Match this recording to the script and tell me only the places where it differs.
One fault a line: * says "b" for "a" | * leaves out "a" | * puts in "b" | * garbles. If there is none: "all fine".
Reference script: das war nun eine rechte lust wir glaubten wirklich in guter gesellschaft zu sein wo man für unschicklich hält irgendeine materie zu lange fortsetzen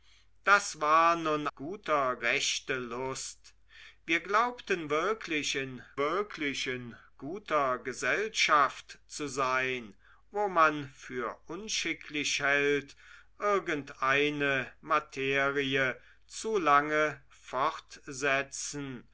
* says "guter" for "eine"
* puts in "wirklich in"